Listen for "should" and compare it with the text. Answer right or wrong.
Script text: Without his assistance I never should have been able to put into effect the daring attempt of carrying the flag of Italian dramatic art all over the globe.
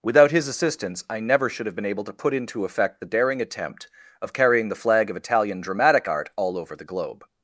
right